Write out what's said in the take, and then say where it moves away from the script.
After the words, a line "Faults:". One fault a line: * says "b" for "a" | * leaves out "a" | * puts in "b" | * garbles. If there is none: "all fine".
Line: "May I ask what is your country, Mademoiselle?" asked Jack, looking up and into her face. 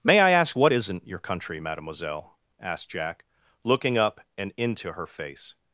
"May I ask what isn't your country, Mademoiselle?" asked Jack, looking up and into her face.
Faults:
* says "isn't" for "is"